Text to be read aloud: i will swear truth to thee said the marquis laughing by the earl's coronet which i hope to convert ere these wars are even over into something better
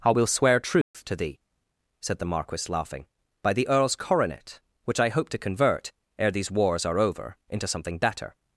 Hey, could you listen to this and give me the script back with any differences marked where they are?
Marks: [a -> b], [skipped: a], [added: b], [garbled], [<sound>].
i will swear truth [dropout] to thee said the marquis laughing by the earl's coronet which i hope to convert ere these wars are [skipped: even] over into something better